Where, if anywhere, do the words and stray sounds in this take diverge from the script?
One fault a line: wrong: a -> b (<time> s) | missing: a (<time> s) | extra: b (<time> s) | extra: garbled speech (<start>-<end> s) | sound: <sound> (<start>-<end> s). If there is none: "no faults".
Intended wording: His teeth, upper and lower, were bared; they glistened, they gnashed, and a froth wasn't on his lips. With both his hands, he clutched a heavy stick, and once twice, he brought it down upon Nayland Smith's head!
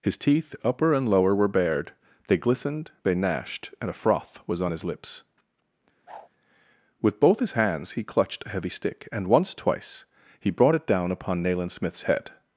wrong: wasn't -> was (4.5 s)
sound: whoosh (6.1-6.3 s)